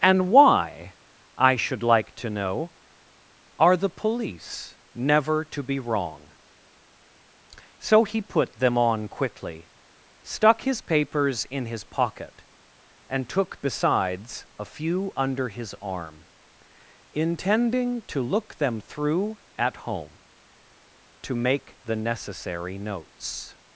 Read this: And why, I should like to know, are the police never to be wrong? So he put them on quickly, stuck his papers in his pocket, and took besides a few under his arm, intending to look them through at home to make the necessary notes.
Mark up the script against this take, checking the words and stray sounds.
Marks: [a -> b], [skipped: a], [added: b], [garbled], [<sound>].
And why, I should like to know, are the police never to be wrong? So he put them on quickly, stuck his papers in his pocket, and took besides a few under his arm, intending to look them through at home to make the necessary notes.